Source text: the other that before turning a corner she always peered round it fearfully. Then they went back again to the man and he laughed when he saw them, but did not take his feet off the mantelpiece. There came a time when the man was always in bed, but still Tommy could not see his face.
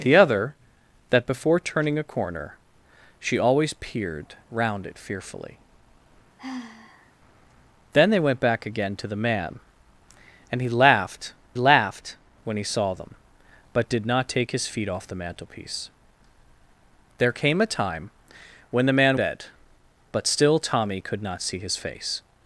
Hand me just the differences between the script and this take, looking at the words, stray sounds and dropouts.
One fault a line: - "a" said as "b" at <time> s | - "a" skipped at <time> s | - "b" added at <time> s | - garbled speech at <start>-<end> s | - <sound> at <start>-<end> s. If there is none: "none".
- sigh at 6.4-7.1 s
- "laughed" added at 11.5 s
- "was always in" skipped at 19.2 s